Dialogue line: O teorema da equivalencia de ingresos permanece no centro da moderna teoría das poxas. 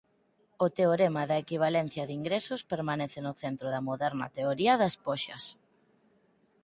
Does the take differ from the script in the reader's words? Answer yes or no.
no